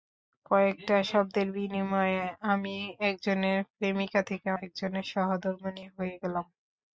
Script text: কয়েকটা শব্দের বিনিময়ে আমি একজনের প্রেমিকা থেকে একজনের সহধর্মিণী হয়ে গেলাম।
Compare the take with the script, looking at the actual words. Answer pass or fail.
pass